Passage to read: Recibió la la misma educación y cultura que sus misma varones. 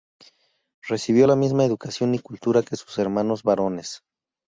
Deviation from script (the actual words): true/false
true